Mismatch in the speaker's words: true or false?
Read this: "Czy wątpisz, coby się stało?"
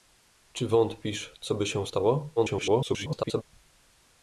true